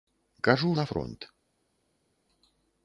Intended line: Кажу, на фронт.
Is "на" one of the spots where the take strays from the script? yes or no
no